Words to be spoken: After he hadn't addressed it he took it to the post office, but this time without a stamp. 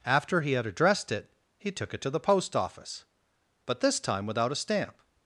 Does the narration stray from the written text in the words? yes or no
yes